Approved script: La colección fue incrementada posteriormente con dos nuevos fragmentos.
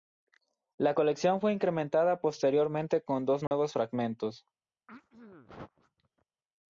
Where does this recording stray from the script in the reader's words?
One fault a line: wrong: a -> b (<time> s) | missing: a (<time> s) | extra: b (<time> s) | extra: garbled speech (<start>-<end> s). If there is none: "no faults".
no faults